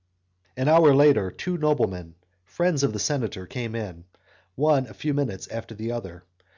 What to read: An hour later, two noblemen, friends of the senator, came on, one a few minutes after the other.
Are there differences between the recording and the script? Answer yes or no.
yes